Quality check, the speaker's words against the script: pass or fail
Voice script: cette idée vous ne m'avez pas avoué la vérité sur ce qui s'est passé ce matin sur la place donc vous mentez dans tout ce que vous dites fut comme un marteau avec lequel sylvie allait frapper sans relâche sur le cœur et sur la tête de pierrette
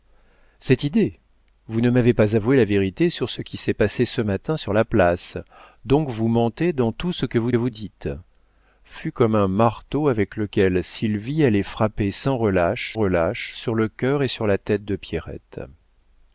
fail